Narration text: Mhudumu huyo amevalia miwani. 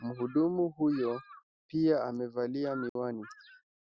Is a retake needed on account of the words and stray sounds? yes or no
yes